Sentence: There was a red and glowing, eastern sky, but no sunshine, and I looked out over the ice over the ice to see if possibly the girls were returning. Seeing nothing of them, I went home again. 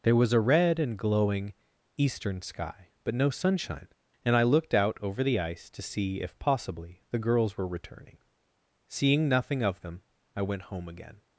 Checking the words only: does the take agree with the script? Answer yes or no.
no